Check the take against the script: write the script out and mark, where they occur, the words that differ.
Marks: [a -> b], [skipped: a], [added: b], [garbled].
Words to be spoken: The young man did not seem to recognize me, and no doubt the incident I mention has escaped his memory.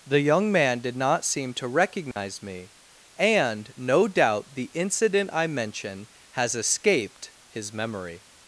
The young man did not seem to recognize me, and no doubt the incident I mention has escaped his memory.